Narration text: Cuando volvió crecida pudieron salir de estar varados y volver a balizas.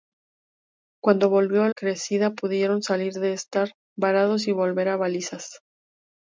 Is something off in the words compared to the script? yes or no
no